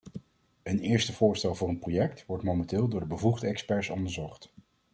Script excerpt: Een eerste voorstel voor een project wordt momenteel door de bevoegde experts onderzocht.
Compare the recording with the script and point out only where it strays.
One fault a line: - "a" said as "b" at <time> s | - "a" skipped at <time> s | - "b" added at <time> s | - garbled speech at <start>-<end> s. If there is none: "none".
none